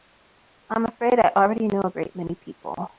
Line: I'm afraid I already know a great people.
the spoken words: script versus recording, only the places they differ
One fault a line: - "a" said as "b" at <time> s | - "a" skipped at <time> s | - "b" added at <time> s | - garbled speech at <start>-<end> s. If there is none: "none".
- "many" added at 2.1 s